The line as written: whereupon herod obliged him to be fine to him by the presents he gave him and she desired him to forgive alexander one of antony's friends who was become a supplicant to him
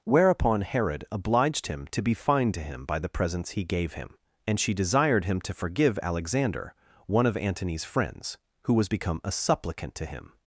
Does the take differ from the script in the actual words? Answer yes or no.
no